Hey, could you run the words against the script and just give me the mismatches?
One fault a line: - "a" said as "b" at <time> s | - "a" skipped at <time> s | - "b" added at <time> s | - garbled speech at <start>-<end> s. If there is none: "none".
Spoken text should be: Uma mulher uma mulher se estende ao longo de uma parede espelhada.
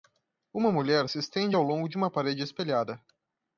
- "uma mulher" skipped at 1.1 s